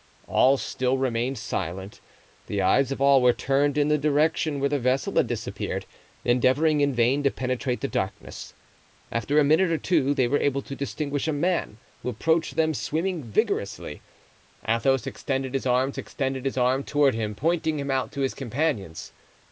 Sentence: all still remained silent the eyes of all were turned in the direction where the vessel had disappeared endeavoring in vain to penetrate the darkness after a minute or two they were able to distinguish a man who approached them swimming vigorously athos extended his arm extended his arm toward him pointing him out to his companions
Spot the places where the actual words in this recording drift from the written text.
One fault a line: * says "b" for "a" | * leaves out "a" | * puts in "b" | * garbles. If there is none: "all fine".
all fine